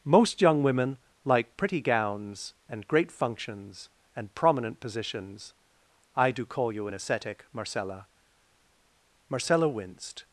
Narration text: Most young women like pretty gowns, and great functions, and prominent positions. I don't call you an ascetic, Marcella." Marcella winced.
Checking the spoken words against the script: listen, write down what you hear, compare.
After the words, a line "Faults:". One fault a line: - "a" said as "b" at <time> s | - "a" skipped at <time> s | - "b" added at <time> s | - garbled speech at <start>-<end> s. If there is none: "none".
Most young women like pretty gowns, and great functions, and prominent positions. I do call you an ascetic, Marcella." Marcella winced.
Faults:
- "don't" said as "do" at 6.3 s